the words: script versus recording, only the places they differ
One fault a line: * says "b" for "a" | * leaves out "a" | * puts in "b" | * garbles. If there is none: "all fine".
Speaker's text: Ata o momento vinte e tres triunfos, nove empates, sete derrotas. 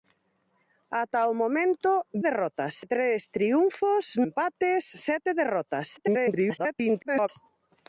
* says "derrotas" for "vinte"
* leaves out "nove"
* garbles